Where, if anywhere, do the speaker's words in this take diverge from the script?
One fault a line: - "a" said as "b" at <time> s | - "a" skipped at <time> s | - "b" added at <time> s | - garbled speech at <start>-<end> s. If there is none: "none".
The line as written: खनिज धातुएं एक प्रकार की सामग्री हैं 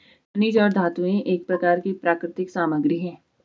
- "और" added at 0.6 s
- "प्राकृतिक" added at 1.9 s